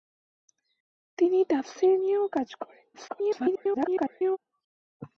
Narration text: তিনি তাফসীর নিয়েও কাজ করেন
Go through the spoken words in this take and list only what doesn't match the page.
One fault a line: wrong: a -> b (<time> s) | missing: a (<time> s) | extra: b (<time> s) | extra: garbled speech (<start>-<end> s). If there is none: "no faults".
extra: garbled speech (2.9-4.4 s)